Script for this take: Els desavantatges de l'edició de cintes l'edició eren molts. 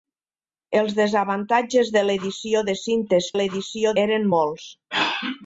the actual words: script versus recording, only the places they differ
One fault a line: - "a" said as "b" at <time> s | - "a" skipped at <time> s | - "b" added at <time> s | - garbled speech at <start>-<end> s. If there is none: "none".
none